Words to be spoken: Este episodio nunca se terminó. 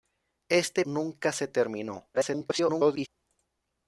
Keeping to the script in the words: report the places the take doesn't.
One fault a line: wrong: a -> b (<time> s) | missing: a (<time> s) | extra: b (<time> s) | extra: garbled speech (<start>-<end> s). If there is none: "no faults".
missing: episodio (0.8 s)
extra: garbled speech (2.1-3.1 s)